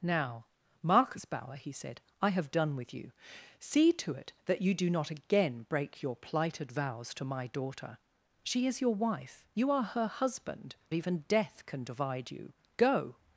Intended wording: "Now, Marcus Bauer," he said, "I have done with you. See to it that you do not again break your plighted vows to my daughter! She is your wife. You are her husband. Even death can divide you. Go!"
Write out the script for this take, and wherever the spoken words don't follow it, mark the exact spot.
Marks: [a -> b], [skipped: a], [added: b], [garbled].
"Now, Marcus Bauer," he said, "I have done with you. See to it that you do not again break your plighted vows to my daughter! She is your wife. You are her husband. Even death can divide you. Go!"